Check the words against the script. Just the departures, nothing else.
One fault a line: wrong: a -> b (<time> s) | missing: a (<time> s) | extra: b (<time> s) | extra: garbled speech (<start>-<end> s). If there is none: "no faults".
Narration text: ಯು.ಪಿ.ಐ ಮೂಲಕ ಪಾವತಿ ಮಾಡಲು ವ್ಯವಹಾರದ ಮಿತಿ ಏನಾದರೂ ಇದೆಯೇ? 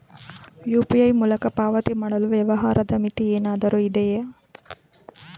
no faults